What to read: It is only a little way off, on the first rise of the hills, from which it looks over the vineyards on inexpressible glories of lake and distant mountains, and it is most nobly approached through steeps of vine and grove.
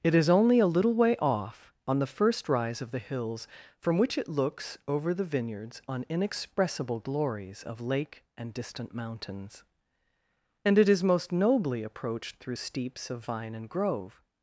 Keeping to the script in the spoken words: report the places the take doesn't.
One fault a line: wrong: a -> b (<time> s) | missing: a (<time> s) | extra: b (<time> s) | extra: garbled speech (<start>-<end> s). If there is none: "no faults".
no faults